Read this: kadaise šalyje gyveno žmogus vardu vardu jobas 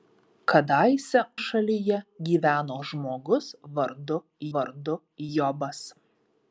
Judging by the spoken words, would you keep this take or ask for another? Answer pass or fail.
pass